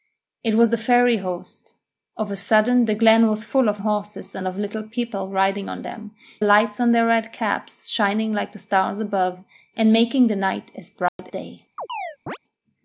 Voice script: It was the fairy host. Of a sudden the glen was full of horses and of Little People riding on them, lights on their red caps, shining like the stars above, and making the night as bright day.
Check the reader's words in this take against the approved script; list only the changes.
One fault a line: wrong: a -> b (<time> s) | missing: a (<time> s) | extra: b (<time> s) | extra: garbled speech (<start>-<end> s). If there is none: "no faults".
no faults